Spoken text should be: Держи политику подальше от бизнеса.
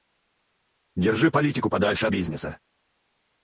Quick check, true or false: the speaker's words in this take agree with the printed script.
true